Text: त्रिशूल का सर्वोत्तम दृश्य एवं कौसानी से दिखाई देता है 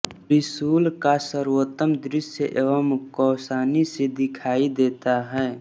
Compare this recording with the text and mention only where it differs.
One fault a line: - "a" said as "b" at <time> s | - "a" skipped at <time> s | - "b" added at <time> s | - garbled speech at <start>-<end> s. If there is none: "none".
none